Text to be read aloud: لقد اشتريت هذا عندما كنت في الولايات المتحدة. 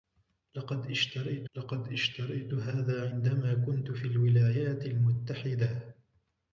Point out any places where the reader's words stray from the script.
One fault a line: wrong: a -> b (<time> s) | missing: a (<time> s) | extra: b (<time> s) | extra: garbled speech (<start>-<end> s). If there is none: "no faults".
extra: لقد اشتريت (1.6 s)